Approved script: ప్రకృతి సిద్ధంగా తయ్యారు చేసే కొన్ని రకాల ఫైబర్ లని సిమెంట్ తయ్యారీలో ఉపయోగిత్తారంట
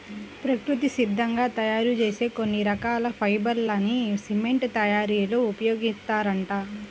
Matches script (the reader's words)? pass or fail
pass